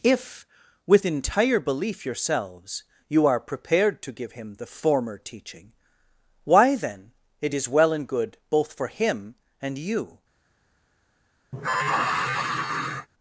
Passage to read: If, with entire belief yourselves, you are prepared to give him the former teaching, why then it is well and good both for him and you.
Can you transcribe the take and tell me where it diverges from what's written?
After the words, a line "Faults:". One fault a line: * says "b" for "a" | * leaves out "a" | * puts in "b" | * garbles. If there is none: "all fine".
If, with entire belief yourselves, you are prepared to give him the former teaching, why then it is well and good both for him and you.
Faults:
all fine